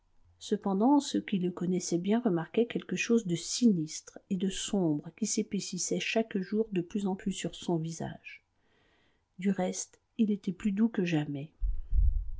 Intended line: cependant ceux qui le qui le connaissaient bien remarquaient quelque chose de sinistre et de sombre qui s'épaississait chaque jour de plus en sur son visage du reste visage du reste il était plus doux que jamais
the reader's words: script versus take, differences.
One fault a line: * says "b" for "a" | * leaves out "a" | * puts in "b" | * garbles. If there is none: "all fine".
* leaves out "qui le"
* puts in "plus"
* leaves out "visage du reste"